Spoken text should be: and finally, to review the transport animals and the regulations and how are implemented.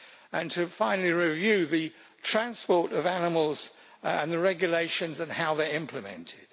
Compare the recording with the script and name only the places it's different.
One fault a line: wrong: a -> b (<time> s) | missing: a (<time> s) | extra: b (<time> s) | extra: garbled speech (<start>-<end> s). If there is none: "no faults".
extra: of (2.9 s)
extra: they (5.5 s)